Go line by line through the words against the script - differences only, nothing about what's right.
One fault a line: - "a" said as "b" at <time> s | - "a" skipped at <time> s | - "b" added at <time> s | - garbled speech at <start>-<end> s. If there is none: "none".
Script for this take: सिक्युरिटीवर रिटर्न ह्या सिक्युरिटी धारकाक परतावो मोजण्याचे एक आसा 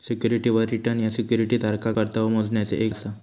none